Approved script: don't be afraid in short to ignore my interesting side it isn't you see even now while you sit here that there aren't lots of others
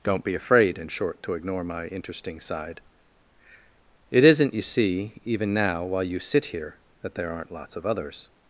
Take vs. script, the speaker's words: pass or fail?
pass